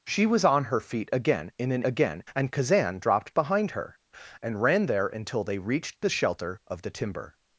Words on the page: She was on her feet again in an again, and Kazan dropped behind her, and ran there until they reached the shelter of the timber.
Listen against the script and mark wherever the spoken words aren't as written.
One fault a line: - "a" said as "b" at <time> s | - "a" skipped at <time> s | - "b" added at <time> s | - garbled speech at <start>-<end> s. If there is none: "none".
none